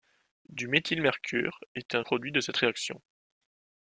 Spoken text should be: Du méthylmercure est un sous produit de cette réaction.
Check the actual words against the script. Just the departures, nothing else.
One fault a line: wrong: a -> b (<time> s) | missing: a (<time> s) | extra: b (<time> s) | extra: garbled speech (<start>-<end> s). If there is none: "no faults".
missing: sous (2.0 s)